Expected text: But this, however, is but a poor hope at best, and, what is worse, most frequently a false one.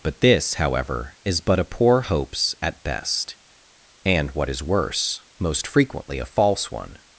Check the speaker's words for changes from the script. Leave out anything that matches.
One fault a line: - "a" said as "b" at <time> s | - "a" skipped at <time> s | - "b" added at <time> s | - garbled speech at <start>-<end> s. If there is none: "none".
- "hope" said as "hopes" at 2.0 s